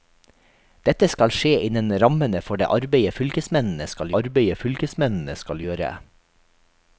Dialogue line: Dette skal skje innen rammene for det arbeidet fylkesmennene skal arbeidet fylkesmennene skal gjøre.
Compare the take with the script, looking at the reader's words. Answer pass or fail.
pass